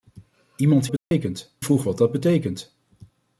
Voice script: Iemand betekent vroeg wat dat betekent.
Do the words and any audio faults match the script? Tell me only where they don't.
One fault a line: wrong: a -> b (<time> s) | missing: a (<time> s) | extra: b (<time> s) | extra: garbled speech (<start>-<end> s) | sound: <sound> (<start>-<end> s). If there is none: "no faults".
sound: dropout (1.0-1.1 s)